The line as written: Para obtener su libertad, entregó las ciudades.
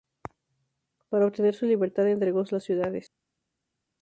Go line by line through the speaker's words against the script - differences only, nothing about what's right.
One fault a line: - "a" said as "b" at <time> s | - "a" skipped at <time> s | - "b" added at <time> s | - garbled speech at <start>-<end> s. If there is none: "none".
none